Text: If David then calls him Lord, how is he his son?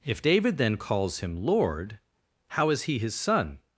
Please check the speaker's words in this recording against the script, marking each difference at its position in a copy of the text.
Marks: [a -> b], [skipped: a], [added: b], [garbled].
If David then calls him Lord, how is he his son?